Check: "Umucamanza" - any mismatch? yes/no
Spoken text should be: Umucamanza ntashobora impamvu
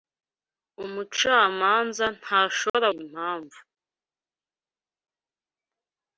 no